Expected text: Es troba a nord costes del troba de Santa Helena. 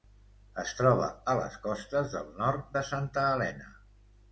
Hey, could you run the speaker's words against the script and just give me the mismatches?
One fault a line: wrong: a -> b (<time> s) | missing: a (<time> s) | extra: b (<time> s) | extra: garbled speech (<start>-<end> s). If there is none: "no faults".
wrong: nord -> les (1.4 s)
wrong: troba -> nord (2.4 s)